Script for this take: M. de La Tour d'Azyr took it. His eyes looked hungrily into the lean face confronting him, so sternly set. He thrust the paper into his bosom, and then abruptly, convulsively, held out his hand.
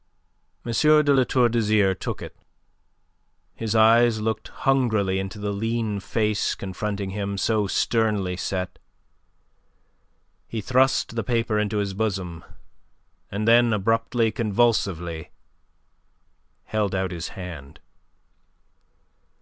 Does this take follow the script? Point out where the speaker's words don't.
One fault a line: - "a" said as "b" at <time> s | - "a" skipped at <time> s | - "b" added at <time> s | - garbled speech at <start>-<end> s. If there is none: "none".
none